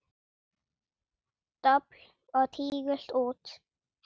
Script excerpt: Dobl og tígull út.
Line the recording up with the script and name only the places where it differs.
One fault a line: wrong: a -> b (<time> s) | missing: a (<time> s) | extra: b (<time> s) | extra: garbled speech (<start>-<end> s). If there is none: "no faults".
no faults